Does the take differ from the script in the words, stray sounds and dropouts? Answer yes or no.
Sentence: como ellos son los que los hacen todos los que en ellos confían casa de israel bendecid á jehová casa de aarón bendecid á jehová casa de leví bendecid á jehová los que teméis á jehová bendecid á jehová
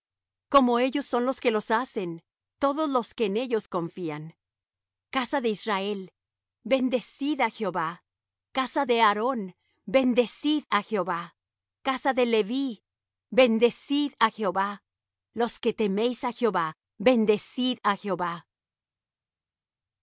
no